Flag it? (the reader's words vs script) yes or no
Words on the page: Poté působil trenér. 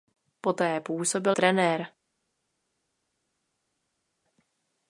no